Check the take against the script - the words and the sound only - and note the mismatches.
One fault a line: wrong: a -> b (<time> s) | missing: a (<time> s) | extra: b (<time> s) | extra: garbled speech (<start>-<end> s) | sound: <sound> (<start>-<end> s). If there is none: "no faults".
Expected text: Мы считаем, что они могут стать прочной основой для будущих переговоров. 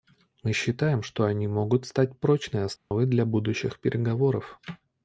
sound: dropout (2.8-2.9 s)